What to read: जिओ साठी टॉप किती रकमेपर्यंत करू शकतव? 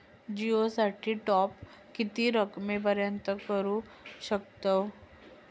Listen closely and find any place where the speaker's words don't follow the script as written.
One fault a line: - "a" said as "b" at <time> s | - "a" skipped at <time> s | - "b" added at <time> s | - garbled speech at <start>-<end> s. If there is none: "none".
none